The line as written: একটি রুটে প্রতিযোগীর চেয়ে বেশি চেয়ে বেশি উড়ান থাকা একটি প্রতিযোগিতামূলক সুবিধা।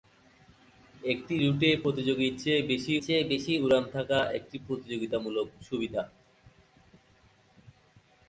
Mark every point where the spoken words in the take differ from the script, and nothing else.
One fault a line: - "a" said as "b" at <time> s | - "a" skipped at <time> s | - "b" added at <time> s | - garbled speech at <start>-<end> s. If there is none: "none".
none